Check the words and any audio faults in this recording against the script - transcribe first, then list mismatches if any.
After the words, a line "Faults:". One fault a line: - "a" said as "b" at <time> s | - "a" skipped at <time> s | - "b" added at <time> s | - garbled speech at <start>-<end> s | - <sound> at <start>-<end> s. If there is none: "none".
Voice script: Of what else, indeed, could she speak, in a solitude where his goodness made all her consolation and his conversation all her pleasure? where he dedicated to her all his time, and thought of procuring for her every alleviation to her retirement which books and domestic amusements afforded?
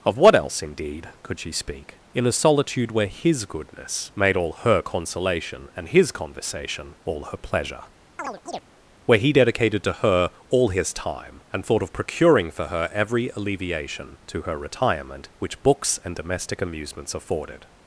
Of what else, indeed, could she speak, in a solitude where his goodness made all her consolation and his conversation all her pleasure? where he dedicated to her all his time, and thought of procuring for her every alleviation to her retirement which books and domestic amusements afforded?
Faults:
- chirp at 8.2-8.6 s